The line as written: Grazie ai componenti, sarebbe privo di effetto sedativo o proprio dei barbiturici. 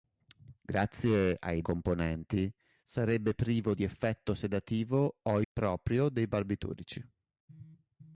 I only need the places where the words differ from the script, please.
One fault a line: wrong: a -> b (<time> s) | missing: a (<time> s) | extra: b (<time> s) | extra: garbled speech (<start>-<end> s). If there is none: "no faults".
no faults